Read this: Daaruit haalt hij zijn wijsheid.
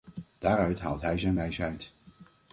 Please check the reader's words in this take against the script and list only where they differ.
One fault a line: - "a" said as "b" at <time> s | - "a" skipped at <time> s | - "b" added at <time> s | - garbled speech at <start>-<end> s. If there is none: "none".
none